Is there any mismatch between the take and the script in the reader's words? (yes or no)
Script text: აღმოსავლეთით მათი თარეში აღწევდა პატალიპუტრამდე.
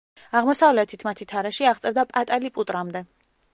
no